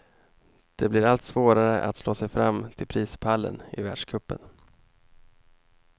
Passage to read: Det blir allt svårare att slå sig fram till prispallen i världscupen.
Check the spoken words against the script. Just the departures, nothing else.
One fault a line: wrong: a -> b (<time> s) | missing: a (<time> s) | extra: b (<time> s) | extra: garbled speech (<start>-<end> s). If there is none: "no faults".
no faults